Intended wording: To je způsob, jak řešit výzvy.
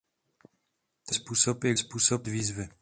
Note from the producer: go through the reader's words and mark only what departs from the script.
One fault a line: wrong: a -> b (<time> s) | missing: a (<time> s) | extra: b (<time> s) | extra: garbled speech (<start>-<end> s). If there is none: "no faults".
missing: je (1.1 s)
wrong: řešit -> způsob (1.8 s)